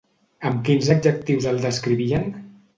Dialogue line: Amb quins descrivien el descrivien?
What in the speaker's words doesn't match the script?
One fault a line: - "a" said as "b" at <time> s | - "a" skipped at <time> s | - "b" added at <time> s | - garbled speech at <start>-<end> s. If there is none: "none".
- "descrivien" said as "adjectius" at 0.9 s